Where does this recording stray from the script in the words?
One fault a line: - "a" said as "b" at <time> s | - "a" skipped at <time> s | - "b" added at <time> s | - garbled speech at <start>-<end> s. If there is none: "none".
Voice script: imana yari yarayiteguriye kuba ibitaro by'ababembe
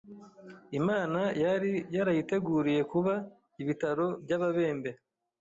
none